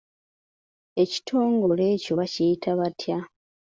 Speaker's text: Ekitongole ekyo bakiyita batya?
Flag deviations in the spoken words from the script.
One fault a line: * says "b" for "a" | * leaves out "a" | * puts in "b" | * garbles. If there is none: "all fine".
all fine